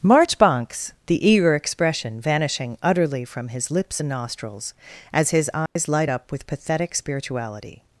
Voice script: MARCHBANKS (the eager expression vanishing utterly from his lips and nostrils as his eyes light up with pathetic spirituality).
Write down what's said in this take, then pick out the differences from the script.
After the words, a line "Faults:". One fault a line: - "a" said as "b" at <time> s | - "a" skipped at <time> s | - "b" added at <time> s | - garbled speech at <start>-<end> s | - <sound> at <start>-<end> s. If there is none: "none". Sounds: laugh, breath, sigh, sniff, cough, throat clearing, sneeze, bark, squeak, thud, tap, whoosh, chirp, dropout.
MARCHBANKS (the eager expression vanishing utterly from his lips and nostrils as his eyes light up with pathetic spirituality).
Faults:
- dropout at 5.7-5.8 s